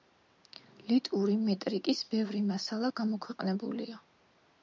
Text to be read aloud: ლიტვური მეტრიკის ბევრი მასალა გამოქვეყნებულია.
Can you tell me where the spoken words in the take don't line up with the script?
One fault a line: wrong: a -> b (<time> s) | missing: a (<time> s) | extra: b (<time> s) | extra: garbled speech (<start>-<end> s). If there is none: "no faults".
no faults